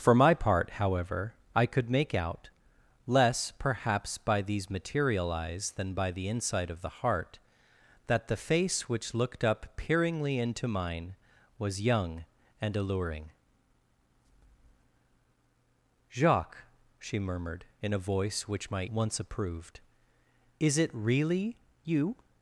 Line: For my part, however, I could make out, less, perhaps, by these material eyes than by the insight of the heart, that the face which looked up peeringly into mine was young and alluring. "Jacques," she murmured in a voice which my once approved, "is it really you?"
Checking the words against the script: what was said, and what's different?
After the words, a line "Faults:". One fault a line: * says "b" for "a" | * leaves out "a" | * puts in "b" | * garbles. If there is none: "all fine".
For my part, however, I could make out, less, perhaps, by these material eyes than by the insight of the heart, that the face which looked up peeringly into mine was young and alluring. "Jacques," she murmured in a voice which my once approved, "is it really you?"
Faults:
all fine